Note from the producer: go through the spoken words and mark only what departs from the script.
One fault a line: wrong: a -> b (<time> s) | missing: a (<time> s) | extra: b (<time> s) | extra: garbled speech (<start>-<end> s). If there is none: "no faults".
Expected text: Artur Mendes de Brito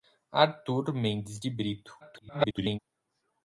extra: garbled speech (2.0-2.8 s)